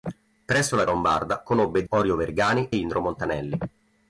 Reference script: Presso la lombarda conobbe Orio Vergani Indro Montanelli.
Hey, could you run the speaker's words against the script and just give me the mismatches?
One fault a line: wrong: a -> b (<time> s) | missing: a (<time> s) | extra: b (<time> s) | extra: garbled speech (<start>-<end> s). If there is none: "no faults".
no faults